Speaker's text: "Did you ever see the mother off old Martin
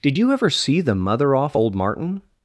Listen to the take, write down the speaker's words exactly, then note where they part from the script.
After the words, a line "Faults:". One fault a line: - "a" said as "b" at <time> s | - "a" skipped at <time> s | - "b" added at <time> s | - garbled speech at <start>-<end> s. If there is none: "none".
"Did you ever see the mother off old Martin
Faults:
none